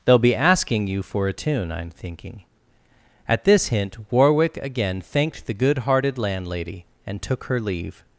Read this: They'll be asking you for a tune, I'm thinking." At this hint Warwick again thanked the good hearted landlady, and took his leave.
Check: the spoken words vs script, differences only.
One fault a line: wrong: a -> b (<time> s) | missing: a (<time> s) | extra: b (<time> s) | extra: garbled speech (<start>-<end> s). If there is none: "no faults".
wrong: his -> her (7.5 s)